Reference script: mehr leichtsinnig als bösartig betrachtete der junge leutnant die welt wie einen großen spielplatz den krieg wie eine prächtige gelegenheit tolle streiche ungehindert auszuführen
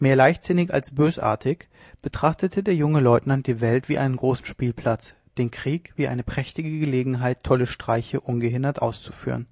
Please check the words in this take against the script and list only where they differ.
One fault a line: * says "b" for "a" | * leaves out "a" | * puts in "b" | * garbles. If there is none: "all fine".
all fine